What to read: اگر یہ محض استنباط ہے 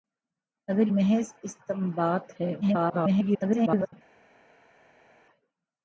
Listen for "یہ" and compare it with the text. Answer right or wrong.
wrong